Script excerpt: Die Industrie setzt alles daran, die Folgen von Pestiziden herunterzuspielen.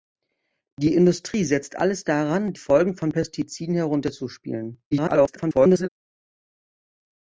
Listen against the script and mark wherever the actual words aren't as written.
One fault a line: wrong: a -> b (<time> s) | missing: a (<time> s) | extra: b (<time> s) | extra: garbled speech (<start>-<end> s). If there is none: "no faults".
missing: die (2.5 s)
extra: garbled speech (4.9-5.9 s)